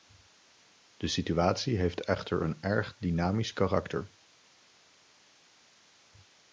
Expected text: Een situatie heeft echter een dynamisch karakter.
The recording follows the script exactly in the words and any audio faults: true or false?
false